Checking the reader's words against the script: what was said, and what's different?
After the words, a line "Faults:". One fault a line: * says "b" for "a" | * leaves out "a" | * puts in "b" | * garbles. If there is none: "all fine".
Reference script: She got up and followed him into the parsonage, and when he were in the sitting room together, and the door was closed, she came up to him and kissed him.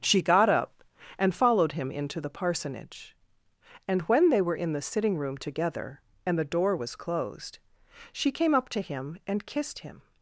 She got up and followed him into the parsonage, and when they were in the sitting room together, and the door was closed, she came up to him and kissed him.
Faults:
* says "they" for "he"